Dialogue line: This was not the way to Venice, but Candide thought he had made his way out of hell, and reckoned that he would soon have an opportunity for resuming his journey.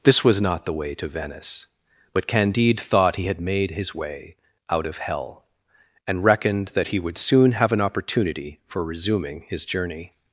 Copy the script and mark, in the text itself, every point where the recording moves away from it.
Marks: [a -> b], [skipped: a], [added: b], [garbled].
This was not the way to Venice, but Candide thought he had made his way out of hell, and reckoned that he would soon have an opportunity for resuming his journey.